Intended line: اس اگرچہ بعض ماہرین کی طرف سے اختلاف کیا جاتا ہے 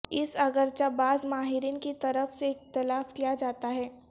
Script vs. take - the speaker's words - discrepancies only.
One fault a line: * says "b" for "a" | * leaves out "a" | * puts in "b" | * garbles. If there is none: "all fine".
all fine